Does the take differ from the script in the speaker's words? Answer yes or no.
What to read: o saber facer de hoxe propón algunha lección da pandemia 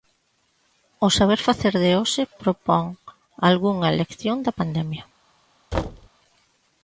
no